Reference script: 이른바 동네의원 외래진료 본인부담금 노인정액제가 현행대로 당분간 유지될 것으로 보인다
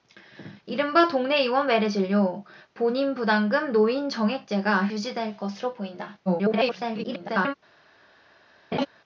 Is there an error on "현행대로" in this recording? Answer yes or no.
yes